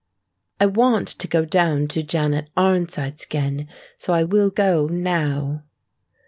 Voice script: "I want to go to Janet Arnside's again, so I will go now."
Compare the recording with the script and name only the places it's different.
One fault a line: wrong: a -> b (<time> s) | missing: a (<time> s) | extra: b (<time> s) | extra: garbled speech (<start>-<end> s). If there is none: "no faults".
extra: down (1.4 s)